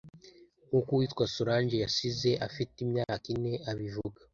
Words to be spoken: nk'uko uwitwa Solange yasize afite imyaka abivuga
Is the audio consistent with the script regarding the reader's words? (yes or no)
no